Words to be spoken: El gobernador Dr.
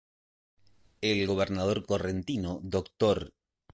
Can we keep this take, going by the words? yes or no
no